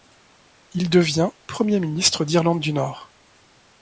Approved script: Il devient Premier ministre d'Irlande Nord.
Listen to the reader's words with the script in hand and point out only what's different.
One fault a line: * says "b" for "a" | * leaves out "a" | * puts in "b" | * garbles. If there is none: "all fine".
* puts in "du"